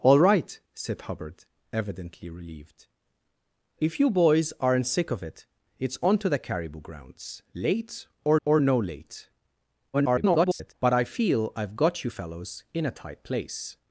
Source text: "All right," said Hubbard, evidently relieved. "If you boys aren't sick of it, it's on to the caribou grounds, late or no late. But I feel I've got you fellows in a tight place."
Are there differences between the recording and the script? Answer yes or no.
yes